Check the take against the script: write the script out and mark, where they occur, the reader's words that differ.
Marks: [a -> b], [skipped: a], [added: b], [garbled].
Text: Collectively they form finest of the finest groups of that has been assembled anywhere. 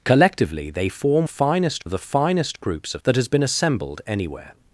Collectively they form finest of the finest groups of that has been assembled anywhere.